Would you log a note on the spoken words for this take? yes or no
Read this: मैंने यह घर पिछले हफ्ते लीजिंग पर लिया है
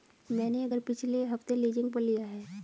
no